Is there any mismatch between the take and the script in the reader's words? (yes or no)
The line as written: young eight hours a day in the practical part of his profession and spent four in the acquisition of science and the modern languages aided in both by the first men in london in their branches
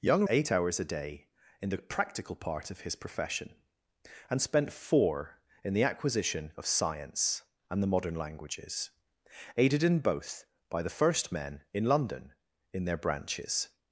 no